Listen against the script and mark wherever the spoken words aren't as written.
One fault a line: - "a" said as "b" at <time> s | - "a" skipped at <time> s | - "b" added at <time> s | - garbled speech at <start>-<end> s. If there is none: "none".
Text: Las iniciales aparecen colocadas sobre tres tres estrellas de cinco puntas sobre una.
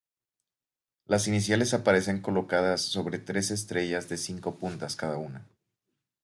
- "tres" skipped at 3.5 s
- "sobre" said as "cada" at 4.9 s